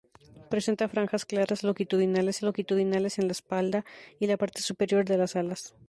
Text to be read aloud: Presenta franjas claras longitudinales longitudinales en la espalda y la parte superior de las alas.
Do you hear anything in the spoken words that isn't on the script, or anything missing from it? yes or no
no